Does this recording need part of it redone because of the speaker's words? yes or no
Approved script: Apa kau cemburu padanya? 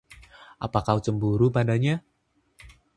no